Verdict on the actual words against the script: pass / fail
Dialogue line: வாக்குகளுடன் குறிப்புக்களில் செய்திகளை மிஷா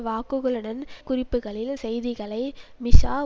pass